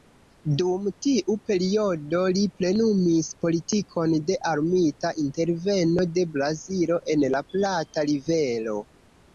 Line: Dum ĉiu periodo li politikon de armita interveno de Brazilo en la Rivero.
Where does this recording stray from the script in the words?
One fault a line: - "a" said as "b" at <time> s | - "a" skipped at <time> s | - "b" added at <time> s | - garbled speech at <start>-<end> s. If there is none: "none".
- "ĉiu" said as "tiu" at 1.1 s
- "plenumis" added at 2.6 s
- "Plata" added at 7.5 s